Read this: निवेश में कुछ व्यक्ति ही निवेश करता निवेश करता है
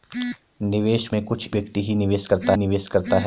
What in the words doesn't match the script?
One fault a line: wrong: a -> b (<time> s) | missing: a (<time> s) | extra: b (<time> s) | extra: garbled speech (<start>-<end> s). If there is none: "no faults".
no faults